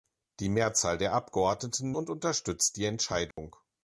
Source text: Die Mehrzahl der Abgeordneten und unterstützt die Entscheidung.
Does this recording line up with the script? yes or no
yes